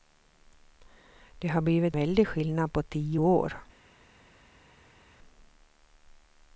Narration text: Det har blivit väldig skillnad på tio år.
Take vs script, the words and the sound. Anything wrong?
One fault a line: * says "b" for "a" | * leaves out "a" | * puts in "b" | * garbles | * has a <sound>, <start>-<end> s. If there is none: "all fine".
all fine